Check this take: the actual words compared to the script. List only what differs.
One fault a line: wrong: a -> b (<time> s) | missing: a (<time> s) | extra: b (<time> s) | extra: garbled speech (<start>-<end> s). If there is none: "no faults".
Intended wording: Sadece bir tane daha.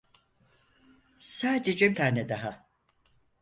missing: bir (2.0 s)